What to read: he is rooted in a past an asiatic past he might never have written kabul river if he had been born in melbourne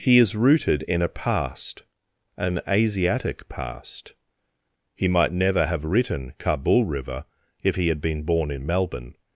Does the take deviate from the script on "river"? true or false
false